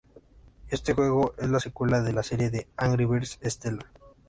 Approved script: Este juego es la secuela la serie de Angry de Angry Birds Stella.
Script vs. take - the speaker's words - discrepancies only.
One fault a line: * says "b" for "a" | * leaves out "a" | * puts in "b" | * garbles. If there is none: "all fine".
* puts in "de"
* leaves out "de Angry"